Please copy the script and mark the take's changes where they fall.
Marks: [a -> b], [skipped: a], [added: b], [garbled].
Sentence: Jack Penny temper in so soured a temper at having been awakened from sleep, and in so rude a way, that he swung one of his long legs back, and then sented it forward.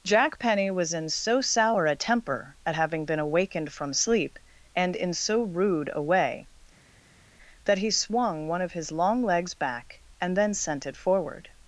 Jack Penny [temper -> was] in so [soured -> sour] a temper at having been awakened from sleep, and in so rude a way, that he swung one of his long legs back, and then [sented -> sent] it forward.